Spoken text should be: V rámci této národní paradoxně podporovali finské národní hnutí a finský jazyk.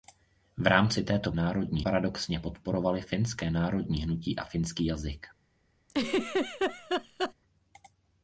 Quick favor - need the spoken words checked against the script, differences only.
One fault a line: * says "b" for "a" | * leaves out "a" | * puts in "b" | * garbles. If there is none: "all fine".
all fine